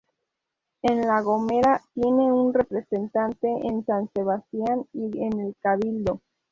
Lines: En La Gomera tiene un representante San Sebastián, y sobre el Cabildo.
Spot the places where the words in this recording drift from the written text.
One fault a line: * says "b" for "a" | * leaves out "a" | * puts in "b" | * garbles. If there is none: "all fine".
* puts in "en"
* says "en" for "sobre"